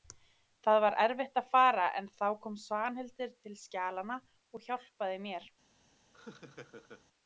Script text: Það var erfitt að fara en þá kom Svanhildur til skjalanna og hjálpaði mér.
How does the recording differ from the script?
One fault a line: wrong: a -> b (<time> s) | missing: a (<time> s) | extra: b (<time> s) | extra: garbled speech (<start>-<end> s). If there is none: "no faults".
no faults